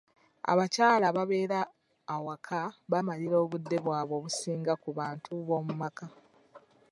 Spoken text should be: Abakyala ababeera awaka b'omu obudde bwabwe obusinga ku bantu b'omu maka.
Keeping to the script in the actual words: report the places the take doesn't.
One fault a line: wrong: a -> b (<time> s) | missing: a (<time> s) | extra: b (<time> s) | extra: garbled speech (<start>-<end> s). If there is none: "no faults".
wrong: b'omu -> bamalira (2.9 s)